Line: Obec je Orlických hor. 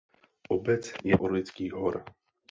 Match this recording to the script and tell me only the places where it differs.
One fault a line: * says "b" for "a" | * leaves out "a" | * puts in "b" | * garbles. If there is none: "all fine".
all fine